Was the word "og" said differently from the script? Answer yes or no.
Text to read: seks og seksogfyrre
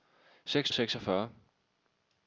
no